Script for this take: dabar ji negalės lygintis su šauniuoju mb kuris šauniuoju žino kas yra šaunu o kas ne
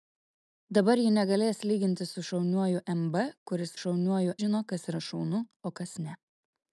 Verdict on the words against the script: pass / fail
pass